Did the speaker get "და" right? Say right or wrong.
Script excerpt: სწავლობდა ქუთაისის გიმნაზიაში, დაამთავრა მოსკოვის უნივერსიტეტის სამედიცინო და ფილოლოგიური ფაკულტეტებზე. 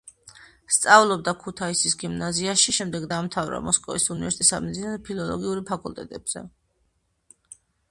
right